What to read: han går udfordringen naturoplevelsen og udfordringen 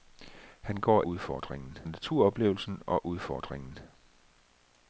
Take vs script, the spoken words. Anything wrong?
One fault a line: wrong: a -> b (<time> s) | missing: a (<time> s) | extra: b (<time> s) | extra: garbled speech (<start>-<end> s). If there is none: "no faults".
no faults